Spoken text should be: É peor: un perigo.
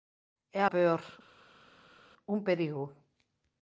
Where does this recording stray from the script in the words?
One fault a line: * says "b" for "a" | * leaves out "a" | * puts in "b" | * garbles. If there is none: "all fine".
all fine